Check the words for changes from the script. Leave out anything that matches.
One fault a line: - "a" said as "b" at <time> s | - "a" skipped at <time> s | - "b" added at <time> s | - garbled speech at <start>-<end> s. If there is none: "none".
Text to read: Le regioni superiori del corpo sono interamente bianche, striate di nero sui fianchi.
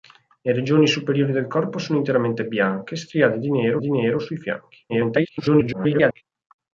- "di nero" added at 3.8 s
- garbled speech at 4.9-6.2 s